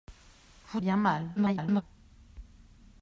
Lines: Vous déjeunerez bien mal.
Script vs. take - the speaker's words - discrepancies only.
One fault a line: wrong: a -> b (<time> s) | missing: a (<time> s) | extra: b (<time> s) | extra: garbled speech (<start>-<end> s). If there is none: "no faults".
missing: déjeunerez (0.8 s)
extra: garbled speech (1.4-1.8 s)